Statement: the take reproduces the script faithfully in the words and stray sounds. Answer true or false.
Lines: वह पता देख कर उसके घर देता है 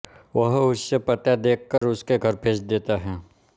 false